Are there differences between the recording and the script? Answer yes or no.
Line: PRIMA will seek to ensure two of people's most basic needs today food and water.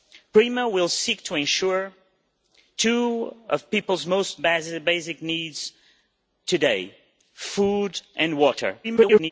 yes